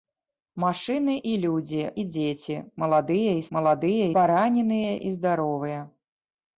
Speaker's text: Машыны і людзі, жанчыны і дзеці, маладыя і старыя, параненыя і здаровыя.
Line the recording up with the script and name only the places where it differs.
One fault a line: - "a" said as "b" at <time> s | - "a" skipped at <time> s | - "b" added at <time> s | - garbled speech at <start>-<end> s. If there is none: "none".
- "жанчыны" skipped at 1.8 s
- "старыя" said as "маладыя" at 3.6 s